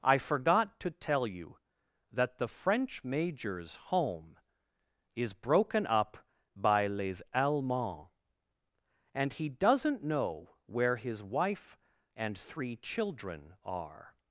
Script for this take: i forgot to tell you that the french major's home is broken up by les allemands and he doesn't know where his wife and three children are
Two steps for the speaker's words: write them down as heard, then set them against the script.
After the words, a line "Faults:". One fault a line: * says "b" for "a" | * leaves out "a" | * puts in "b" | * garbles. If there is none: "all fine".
i forgot to tell you that the french major's home is broken up by les allemands and he doesn't know where his wife and three children are
Faults:
all fine